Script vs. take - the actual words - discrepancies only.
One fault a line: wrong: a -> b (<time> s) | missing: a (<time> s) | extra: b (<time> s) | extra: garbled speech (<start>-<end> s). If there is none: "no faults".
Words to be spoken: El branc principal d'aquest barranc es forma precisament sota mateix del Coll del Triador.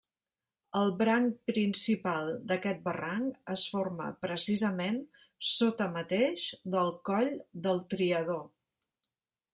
no faults